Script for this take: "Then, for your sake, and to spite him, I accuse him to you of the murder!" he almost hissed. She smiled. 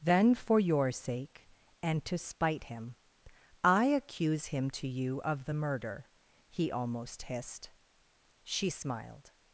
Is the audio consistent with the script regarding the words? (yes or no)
yes